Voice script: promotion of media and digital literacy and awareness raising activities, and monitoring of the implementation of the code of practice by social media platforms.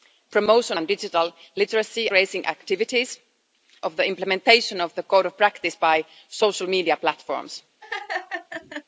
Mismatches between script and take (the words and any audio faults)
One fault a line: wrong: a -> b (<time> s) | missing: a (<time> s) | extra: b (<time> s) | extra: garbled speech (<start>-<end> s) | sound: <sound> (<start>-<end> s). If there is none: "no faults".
missing: of media (0.8 s)
missing: and awareness (2.1 s)
missing: and monitoring (3.2 s)
sound: laugh (7.8-8.8 s)